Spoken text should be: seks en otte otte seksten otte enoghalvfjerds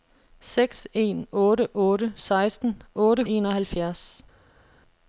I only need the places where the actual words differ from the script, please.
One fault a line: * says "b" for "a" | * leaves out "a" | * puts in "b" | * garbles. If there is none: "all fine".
all fine